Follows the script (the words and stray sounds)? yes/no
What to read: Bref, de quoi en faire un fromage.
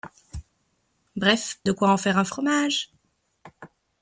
yes